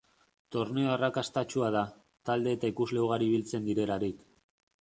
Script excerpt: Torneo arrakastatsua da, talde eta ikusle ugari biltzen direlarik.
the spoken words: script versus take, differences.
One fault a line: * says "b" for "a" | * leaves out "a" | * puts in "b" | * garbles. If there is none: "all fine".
all fine